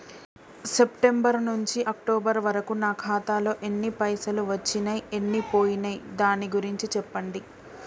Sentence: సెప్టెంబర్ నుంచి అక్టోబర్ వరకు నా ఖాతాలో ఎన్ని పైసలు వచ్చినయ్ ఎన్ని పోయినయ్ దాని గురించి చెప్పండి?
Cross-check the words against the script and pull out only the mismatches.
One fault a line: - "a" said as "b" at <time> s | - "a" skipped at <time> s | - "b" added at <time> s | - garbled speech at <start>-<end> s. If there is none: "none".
none